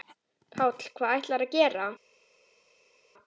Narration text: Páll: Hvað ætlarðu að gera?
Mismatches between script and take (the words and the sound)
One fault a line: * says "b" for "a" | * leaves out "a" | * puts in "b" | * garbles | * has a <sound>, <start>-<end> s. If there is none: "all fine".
all fine